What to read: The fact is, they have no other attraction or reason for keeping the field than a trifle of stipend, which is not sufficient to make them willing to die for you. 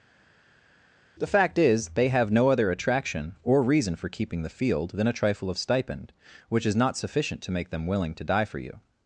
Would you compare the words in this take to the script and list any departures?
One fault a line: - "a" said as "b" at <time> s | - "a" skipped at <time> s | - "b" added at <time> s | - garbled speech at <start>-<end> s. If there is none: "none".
none